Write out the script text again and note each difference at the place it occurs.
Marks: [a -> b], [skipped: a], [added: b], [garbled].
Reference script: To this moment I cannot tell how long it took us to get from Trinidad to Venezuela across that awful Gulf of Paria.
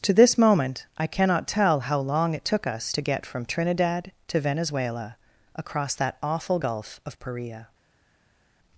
To this moment I cannot tell how long it took us to get from Trinidad to Venezuela across that awful Gulf of Paria.